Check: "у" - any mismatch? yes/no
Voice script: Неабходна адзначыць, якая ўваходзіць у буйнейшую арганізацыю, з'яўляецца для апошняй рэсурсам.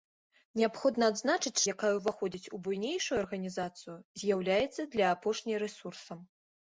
no